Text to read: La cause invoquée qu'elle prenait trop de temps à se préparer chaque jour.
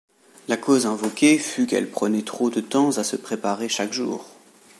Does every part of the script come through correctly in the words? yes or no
no